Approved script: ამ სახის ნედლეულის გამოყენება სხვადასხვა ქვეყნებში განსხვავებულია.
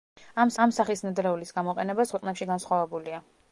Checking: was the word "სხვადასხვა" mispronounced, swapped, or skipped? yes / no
yes